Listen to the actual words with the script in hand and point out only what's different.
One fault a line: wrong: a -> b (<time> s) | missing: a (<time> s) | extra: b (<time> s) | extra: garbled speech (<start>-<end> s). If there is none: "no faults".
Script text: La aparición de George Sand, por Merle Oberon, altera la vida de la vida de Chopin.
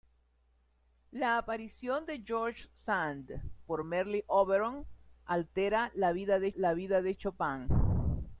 no faults